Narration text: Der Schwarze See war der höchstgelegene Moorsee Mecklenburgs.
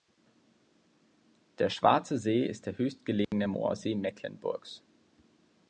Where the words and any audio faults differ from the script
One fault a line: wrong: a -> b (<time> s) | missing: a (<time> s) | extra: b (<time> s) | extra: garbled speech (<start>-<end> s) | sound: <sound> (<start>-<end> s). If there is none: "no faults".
wrong: war -> ist (2.4 s)
sound: dropout (3.2-3.3 s)